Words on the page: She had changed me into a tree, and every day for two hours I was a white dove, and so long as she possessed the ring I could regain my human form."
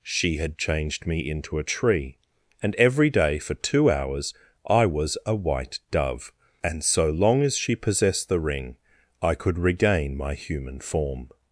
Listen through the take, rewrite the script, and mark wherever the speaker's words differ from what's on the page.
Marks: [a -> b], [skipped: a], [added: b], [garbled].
She had changed me into a tree, and every day for two hours I was a white dove, and so long as she possessed the ring I could regain my human form."